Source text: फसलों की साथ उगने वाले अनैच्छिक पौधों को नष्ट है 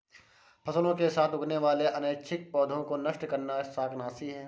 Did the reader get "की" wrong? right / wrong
wrong